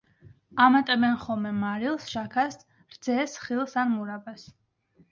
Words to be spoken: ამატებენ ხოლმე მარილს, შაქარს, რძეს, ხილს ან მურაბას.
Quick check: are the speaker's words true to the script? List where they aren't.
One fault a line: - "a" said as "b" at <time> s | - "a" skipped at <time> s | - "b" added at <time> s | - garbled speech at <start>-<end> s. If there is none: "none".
none